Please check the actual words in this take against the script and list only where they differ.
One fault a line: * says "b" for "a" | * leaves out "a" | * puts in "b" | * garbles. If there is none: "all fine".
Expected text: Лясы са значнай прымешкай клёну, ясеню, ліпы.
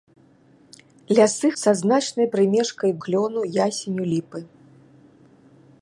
all fine